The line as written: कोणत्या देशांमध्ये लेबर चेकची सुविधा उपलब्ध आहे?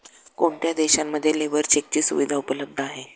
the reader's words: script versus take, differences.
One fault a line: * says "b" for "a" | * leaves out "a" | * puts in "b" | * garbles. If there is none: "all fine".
all fine